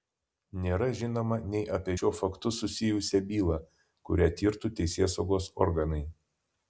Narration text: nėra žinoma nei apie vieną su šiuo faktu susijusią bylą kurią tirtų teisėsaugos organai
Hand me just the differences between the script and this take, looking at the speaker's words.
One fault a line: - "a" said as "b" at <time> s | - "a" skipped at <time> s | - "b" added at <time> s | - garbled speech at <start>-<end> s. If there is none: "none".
- "vieną su" skipped at 1.9 s